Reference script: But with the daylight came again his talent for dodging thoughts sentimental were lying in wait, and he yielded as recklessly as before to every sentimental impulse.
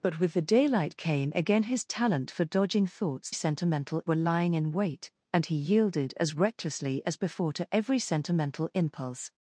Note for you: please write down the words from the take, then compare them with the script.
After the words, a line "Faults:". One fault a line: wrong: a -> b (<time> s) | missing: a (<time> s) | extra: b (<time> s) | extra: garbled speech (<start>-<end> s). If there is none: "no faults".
But with the daylight came again his talent for dodging thoughts sentimental were lying in wait, and he yielded as recklessly as before to every sentimental impulse.
Faults:
no faults